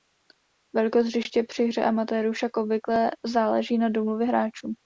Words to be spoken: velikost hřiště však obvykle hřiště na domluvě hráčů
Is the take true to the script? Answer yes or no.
no